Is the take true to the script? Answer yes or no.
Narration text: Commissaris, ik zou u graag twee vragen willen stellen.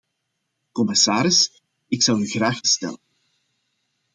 no